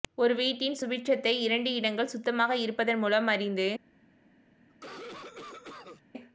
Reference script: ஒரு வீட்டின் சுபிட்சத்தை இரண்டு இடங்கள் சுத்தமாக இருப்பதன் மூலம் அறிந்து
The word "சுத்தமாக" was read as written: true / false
true